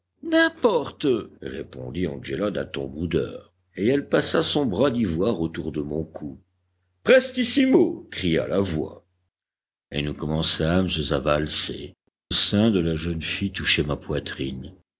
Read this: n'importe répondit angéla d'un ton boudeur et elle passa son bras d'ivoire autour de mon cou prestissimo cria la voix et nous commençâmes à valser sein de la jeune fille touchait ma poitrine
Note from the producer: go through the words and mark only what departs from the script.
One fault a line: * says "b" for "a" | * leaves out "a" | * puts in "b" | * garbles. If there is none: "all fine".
all fine